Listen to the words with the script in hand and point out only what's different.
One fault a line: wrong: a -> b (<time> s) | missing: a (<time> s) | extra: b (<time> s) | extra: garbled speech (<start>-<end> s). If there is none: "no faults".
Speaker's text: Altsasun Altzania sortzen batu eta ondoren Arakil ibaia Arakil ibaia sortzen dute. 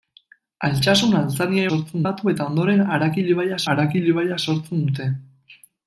no faults